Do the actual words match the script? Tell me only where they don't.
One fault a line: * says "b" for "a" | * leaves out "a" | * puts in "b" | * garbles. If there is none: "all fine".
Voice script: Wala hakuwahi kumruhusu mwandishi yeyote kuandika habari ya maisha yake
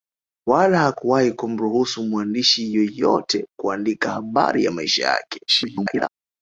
* garbles